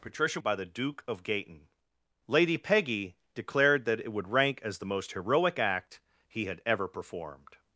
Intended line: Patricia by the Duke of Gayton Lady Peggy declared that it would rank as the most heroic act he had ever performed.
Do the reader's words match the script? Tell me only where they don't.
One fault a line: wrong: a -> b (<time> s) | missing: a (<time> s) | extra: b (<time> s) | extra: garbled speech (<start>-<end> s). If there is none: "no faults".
no faults